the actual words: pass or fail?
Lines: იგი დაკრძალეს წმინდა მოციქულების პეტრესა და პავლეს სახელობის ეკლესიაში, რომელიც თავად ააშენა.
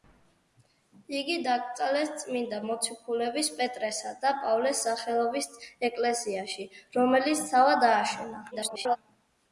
fail